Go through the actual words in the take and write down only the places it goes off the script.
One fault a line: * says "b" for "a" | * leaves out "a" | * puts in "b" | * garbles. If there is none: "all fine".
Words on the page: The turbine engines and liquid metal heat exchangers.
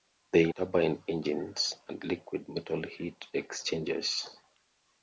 all fine